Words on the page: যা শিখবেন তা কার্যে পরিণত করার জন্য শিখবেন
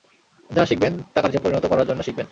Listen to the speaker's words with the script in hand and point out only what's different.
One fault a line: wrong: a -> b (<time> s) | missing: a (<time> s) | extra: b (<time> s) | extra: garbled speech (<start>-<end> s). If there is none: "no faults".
no faults